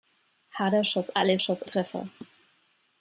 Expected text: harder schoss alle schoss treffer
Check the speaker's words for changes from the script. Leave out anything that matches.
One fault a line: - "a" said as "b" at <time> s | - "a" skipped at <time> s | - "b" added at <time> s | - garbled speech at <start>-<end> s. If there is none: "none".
none